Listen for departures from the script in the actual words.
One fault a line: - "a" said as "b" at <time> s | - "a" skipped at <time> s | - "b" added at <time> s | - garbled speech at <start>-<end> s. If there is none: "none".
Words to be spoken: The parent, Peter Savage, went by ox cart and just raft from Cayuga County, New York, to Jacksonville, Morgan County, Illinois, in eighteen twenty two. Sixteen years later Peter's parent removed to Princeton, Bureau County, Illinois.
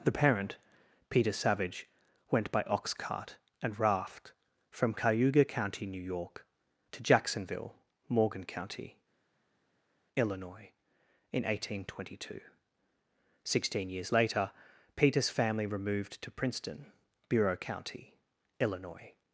- "just" skipped at 3.8 s
- "parent" said as "family" at 15.3 s